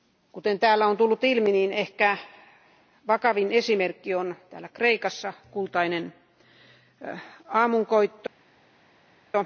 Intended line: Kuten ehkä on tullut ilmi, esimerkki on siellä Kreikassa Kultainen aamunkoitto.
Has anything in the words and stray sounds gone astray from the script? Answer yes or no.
yes